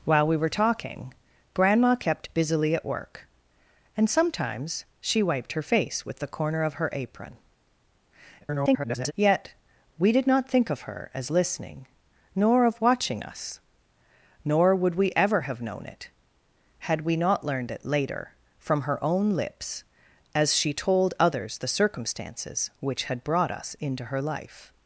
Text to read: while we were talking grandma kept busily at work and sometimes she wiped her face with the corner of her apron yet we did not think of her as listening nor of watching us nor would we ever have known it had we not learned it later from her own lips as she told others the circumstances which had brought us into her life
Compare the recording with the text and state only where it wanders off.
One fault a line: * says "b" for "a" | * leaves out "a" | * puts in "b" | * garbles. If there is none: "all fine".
* garbles